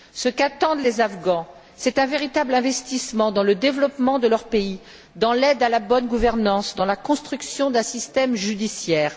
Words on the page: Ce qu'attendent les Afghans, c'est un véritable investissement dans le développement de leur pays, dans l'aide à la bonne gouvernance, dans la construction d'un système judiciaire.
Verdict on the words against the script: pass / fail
pass